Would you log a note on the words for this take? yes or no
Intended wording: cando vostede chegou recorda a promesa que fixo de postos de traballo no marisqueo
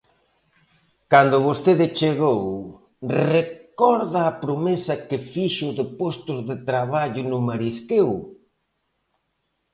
no